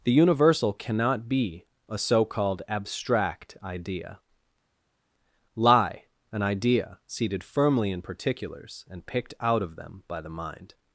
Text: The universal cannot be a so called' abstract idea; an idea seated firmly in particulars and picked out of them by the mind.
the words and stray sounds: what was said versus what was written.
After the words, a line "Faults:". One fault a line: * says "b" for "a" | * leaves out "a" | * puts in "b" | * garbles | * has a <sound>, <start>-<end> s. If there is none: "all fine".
The universal cannot be a so called' abstract idea; lie an idea seated firmly in particulars and picked out of them by the mind.
Faults:
* puts in "lie"